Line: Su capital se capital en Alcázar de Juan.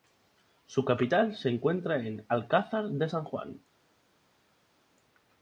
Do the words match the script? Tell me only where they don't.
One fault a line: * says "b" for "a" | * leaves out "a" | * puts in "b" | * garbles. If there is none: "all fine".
* says "encuentra" for "capital"
* puts in "San"